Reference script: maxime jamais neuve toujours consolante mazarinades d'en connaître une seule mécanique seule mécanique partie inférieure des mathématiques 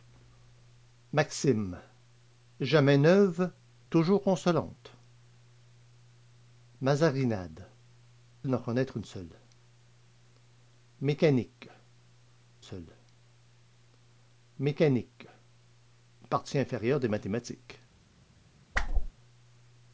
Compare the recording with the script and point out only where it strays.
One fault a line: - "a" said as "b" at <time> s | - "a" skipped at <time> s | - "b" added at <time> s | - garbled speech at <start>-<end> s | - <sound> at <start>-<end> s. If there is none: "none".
- whoosh at 18.7-19.1 s